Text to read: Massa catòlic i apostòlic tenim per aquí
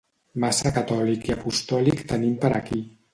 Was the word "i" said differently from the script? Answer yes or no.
no